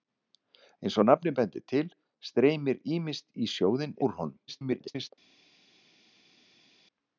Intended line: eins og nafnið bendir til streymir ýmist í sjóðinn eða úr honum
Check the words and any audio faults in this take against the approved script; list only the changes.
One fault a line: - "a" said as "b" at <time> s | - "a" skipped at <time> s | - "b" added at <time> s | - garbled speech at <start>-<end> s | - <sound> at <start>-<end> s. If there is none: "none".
- "eða" skipped at 4.0 s
- garbled speech at 4.5-5.1 s